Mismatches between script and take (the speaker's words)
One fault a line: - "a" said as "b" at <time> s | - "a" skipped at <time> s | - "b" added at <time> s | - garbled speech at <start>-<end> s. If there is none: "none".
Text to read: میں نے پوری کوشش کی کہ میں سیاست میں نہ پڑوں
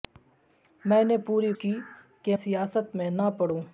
- "کوشش" skipped at 1.5 s
- "میں" skipped at 2.4 s